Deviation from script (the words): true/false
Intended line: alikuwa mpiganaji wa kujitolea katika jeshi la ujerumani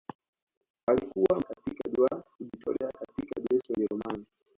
true